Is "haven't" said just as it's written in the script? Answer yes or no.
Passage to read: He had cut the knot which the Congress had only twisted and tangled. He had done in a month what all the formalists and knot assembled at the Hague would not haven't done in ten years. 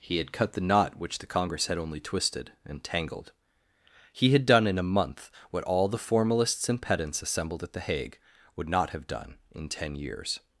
no